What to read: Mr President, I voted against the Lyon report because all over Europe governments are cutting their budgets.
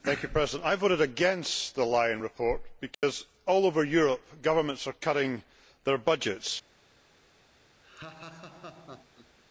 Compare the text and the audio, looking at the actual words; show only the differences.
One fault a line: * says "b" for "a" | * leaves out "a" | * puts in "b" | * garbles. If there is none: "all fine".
all fine